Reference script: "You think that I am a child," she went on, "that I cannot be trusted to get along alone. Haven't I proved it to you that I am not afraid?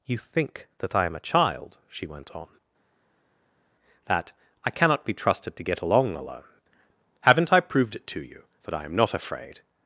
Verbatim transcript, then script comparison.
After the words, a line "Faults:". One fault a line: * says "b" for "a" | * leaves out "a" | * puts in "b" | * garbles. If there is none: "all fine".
"You think that I am a child," she went on, "that I cannot be trusted to get along alone. Haven't I proved it to you that I am not afraid?
Faults:
all fine